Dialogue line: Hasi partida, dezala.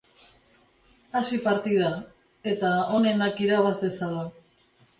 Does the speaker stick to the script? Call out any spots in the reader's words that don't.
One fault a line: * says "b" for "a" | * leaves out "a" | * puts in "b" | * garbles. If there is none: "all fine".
* puts in "eta onenak irabaz"